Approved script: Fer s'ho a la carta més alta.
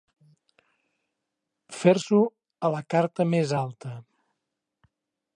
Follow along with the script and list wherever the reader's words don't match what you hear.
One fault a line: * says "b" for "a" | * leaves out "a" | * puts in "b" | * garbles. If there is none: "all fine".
all fine